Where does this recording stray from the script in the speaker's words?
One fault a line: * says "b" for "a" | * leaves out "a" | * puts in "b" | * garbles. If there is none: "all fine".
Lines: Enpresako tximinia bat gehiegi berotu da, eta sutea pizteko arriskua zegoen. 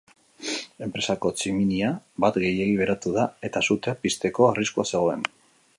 all fine